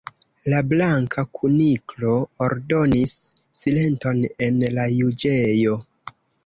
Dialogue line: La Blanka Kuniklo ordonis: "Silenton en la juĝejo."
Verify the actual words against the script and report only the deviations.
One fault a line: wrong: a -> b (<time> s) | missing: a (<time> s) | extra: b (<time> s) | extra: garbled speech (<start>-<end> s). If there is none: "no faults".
no faults